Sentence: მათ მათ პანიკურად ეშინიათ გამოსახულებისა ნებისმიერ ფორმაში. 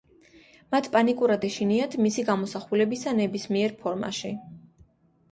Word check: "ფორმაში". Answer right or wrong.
right